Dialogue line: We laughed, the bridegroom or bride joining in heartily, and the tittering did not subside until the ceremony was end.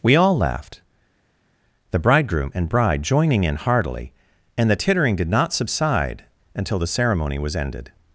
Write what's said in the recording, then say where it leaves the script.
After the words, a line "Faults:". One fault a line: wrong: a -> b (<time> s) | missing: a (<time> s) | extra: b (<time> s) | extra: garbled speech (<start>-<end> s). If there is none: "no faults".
We all laughed, the bridegroom and bride joining in heartily, and the tittering did not subside until the ceremony was ended.
Faults:
extra: all (0.1 s)
wrong: or -> and (2.5 s)
wrong: end -> ended (7.6 s)